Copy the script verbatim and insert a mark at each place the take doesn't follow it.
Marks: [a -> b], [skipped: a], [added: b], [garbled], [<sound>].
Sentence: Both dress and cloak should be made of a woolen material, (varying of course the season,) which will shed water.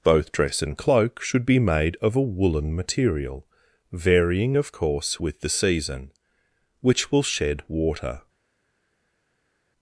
Both dress and cloak should be made of a woolen material, (varying of course [added: with] the season,) which will shed water.